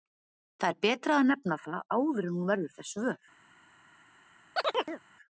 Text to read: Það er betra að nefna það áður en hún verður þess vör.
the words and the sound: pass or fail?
fail